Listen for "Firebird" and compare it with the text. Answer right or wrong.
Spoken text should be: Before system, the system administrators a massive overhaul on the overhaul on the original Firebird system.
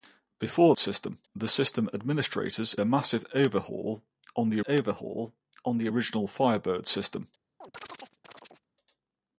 right